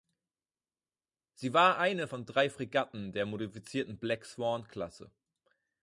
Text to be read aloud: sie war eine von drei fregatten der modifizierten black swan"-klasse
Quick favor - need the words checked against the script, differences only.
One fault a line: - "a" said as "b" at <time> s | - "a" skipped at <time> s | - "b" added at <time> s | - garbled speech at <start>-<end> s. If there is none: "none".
none